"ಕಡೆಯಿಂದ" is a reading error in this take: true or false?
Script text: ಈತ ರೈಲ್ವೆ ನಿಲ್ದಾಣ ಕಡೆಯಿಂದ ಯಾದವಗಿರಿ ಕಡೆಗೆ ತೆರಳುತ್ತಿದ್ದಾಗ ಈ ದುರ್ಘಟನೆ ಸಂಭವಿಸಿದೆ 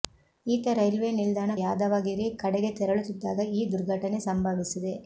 true